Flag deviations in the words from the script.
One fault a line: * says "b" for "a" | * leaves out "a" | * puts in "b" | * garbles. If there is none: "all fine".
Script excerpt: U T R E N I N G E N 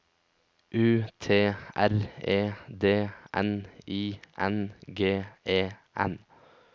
* puts in "D"